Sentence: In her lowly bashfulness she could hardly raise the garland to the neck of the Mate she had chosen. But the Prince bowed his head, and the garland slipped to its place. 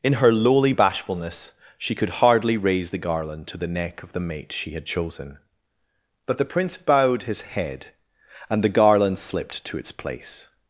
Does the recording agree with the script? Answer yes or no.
yes